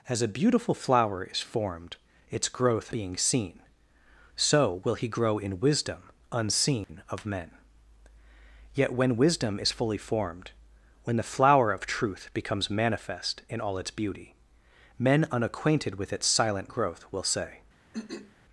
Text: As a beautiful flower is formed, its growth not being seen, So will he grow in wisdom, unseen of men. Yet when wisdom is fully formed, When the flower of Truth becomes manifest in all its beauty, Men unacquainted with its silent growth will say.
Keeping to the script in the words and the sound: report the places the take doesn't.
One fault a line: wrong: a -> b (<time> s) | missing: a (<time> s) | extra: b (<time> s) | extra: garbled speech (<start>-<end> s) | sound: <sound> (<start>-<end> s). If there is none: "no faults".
missing: not (3.0 s)
sound: dropout (6.8-6.9 s)
sound: throat clearing (17.9-18.3 s)